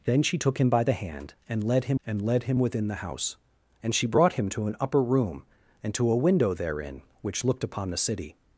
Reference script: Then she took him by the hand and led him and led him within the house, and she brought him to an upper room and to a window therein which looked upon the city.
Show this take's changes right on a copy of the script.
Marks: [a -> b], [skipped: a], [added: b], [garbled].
Then she took him by the hand and led him and led him within the house, and she brought him to an upper room and to a window therein which looked upon the city.